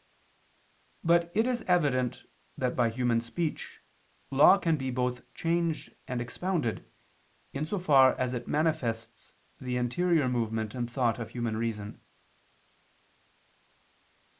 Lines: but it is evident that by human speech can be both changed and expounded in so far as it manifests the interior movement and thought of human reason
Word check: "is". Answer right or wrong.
right